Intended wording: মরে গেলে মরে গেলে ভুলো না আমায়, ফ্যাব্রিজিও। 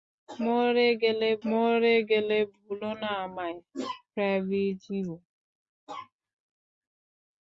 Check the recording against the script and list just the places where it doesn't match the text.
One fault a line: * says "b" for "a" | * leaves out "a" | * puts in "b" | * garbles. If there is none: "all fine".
all fine